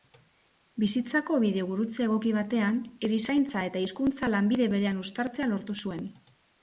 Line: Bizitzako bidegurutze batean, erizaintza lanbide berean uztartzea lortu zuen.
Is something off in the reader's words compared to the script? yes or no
yes